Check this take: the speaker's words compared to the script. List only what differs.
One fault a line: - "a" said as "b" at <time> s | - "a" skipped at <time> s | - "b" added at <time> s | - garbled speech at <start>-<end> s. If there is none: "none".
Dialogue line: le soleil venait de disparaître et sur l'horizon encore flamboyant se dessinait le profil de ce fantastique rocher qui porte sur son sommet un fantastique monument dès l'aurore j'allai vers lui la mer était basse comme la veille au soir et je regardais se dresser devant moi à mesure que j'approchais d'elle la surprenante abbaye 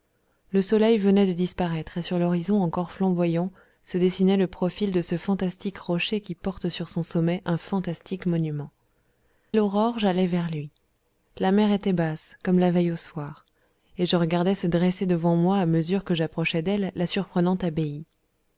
- "dès" skipped at 8.7 s